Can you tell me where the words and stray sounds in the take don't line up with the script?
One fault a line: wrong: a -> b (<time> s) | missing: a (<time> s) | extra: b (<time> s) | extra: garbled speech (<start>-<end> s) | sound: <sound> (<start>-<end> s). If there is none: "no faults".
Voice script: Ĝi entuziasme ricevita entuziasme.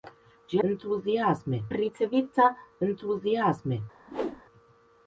sound: whoosh (4.1-4.4 s)